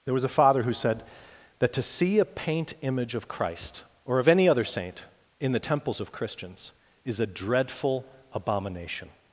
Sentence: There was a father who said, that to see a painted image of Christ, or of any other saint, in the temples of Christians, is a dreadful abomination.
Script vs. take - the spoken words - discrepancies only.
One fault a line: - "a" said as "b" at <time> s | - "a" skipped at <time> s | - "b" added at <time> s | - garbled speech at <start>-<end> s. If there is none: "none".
- "painted" said as "paint" at 2.2 s